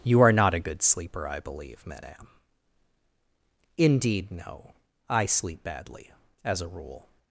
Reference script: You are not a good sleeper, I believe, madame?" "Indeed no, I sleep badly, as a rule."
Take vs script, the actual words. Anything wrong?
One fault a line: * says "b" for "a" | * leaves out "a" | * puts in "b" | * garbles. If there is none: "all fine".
all fine